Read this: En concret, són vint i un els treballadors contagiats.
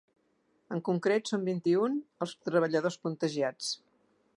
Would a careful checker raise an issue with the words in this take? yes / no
no